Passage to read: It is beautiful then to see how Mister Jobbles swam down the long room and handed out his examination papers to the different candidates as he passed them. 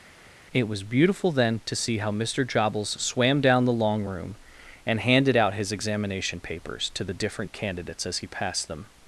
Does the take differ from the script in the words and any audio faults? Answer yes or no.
yes